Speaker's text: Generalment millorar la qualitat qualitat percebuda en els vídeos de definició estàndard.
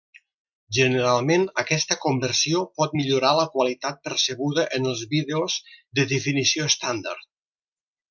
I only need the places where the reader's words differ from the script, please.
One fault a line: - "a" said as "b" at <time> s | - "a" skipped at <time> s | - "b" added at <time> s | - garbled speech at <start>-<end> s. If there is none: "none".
- "aquesta conversió pot" added at 1.6 s
- "qualitat" skipped at 4.0 s